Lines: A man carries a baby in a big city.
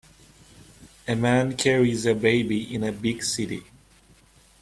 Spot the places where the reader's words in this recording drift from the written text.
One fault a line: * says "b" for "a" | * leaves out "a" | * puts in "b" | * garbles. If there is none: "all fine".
all fine